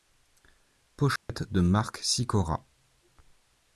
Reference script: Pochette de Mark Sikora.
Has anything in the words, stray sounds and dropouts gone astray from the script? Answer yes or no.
yes